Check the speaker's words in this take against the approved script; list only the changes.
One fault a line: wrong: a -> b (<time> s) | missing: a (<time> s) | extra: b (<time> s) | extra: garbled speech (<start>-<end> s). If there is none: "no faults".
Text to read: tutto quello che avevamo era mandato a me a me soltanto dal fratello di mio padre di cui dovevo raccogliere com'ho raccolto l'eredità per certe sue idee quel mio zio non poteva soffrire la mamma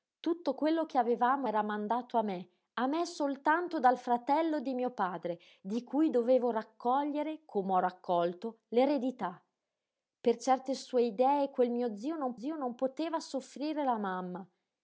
extra: zio non (12.4 s)